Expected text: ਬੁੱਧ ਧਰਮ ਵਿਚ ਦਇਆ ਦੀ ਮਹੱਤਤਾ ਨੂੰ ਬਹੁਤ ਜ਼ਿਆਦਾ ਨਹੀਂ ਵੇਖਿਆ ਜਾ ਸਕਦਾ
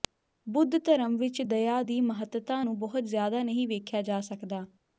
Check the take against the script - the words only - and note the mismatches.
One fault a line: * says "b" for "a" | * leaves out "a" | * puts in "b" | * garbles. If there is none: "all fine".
all fine